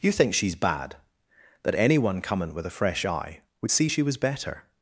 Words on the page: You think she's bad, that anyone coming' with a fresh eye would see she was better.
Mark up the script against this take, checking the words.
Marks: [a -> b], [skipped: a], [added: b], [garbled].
You think she's bad, that anyone coming' with a fresh eye would see she was better.